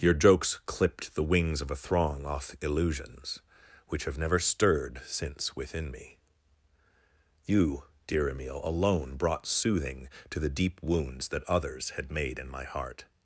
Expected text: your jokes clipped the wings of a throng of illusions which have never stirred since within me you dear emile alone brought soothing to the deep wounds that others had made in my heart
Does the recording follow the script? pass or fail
fail